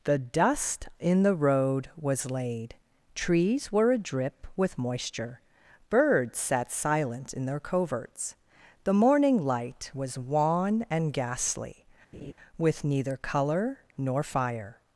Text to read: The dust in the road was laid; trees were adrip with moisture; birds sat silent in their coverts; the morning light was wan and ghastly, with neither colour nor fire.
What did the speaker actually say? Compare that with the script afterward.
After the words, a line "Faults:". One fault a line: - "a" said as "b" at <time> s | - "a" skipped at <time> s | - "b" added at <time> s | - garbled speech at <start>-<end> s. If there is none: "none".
The dust in the road was laid; trees were adrip with moisture; birds sat silent in their coverts; the morning light was wan and ghastly, with neither colour nor fire.
Faults:
none